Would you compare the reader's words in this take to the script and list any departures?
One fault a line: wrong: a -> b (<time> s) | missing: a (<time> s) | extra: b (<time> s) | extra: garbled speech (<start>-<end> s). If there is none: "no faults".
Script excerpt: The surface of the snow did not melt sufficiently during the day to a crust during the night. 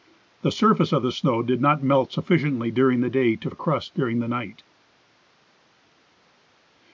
no faults